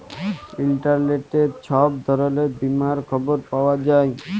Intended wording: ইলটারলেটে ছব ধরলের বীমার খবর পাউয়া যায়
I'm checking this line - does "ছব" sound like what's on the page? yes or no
yes